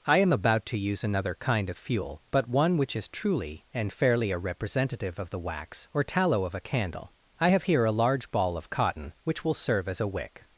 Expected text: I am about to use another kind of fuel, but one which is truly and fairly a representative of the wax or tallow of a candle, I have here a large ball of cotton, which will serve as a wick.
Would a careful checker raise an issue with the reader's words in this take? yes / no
no